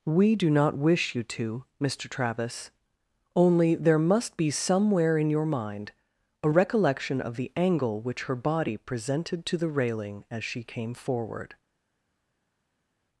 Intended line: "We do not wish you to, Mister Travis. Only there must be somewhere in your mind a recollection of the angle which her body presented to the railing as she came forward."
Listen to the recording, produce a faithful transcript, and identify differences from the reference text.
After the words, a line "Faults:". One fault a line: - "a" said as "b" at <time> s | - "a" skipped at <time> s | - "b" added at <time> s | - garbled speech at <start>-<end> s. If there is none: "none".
"We do not wish you to, Mister Travis. Only there must be somewhere in your mind a recollection of the angle which her body presented to the railing as she came forward."
Faults:
none